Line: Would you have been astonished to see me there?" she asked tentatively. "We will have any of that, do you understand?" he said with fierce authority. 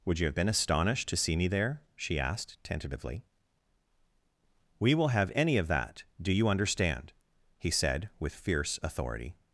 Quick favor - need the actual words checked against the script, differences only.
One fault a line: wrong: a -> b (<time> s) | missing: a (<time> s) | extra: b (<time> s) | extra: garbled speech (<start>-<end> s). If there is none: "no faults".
no faults